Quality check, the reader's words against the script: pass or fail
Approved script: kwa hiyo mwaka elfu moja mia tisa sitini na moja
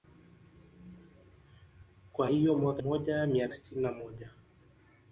fail